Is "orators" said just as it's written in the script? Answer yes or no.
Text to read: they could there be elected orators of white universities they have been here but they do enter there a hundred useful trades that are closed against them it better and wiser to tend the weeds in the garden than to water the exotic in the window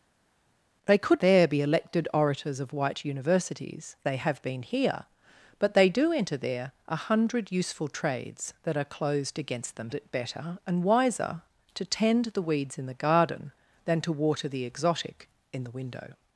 yes